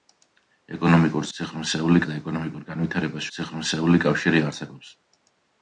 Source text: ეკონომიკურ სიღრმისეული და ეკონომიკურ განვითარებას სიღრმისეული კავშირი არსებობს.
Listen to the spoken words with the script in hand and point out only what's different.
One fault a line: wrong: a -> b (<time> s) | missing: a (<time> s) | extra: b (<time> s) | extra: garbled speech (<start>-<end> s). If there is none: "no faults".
no faults